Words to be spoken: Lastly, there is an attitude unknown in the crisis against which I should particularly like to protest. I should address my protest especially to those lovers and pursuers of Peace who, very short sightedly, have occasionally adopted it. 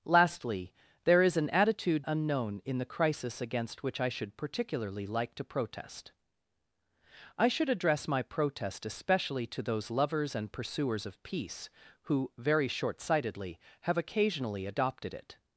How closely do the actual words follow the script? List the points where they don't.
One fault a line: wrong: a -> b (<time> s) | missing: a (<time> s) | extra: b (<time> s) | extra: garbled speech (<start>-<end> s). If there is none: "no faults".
no faults